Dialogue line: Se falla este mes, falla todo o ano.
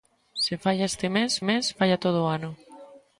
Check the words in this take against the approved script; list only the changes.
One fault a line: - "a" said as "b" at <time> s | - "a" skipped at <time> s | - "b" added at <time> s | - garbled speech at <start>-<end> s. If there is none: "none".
- "mes" added at 1.4 s